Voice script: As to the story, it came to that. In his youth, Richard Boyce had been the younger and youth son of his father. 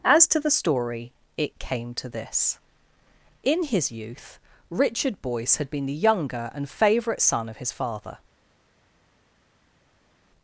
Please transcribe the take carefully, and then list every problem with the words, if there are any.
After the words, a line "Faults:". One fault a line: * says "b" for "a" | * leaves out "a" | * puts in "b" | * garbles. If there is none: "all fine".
As to the story, it came to this. In his youth, Richard Boyce had been the younger and favourite son of his father.
Faults:
* says "this" for "that"
* says "favourite" for "youth"